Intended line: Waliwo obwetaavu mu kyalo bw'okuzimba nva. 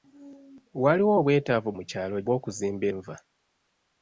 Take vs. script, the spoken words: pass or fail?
pass